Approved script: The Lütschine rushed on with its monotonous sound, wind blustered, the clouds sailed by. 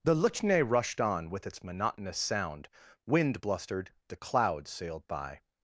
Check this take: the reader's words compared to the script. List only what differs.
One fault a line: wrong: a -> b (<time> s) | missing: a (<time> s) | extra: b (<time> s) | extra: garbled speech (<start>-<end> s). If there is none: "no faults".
no faults